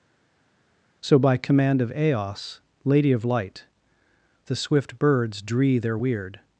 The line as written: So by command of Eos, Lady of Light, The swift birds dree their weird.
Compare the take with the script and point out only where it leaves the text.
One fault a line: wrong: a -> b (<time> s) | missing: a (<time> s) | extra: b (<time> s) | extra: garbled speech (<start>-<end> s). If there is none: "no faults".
no faults